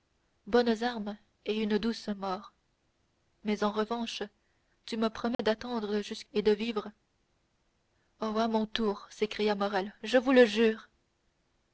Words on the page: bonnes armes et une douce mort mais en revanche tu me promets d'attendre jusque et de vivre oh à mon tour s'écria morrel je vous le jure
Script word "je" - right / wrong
right